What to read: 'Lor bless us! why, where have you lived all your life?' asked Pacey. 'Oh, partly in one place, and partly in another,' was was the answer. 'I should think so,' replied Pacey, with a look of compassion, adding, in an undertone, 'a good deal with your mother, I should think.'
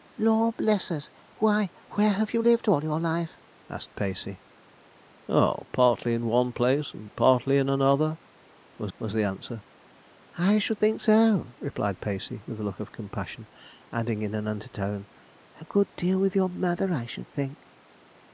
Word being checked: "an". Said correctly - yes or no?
yes